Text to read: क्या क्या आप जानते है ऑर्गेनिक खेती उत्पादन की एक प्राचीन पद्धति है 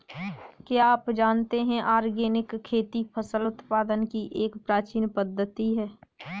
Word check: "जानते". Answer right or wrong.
right